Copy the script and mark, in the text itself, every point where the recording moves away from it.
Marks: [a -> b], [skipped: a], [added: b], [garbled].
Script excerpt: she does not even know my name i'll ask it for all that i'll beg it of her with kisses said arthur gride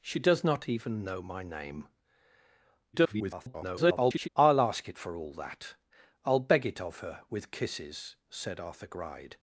she does not even know my name [garbled] i'll ask it for all that i'll beg it of her with kisses said arthur gride